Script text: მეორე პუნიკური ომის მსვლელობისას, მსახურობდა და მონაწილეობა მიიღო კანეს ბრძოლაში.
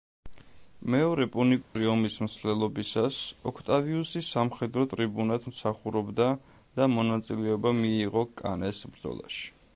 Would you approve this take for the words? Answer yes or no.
no